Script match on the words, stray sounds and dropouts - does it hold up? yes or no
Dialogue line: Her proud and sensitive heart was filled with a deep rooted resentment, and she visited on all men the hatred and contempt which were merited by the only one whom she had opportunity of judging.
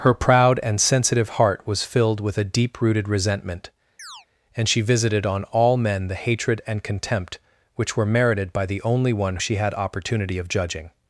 no